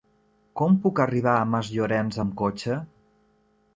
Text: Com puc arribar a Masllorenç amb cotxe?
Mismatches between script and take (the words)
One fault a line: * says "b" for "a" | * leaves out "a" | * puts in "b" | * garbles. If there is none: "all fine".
all fine